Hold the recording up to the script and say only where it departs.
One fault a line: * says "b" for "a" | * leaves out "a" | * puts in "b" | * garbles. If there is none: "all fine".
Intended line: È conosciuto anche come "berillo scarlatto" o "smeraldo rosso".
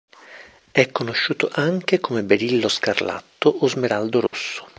all fine